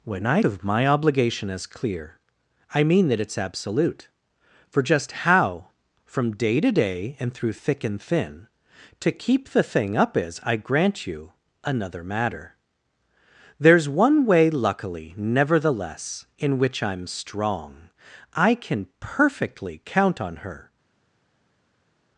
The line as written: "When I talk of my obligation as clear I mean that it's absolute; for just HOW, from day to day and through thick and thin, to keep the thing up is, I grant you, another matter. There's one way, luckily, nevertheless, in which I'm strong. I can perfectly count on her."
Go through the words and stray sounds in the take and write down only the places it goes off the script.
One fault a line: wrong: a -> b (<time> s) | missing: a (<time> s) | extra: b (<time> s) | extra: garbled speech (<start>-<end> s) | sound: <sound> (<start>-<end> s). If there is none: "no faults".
missing: talk (0.4 s)